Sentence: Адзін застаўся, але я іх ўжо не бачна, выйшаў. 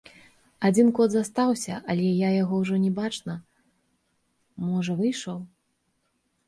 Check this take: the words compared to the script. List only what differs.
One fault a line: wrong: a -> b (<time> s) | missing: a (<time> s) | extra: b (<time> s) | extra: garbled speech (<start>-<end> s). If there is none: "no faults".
extra: кот (1.0 s)
wrong: іх -> яго (2.4 s)
extra: можа (4.7 s)